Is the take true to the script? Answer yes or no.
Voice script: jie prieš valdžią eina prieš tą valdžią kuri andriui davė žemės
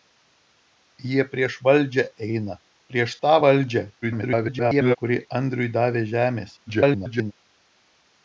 no